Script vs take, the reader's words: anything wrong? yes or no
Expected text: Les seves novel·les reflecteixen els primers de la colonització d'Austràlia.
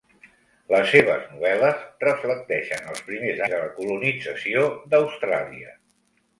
no